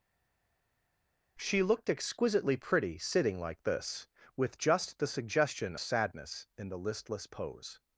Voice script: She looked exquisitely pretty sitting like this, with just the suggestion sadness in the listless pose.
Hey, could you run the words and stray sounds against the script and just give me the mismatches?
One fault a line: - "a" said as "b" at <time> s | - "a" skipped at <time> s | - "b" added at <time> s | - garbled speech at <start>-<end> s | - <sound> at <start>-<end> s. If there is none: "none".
none